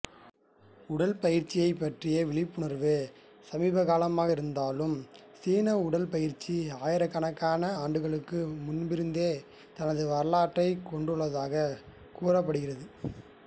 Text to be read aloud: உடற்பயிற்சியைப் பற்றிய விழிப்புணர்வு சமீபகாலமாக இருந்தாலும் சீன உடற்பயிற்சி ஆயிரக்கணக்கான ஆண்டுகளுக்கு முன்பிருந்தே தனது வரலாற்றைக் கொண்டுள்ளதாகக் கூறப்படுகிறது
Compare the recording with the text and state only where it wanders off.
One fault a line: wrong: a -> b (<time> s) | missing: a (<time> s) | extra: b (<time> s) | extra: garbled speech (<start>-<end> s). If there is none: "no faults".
no faults